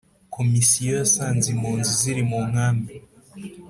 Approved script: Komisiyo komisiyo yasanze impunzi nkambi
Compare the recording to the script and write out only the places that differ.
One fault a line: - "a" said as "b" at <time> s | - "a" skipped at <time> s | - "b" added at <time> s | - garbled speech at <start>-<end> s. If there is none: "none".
- "komisiyo" skipped at 0.9 s
- "ziri mu" added at 2.0 s